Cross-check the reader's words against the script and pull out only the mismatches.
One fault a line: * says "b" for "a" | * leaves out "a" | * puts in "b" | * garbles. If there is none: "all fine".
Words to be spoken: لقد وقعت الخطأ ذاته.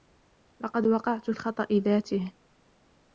all fine